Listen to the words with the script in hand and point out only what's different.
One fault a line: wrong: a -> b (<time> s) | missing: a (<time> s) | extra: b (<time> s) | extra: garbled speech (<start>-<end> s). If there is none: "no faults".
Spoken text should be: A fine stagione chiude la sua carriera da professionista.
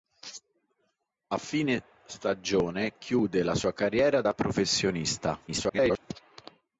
extra: garbled speech (5.5-6.0 s)